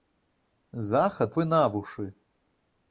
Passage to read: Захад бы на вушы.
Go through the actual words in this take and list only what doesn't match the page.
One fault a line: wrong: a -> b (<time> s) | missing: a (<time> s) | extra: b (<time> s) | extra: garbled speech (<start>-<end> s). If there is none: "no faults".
no faults